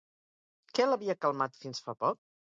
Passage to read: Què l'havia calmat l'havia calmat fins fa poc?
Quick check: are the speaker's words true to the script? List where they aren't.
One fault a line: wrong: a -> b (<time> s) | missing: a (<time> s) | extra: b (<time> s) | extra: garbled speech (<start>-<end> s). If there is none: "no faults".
missing: l'havia calmat (1.6 s)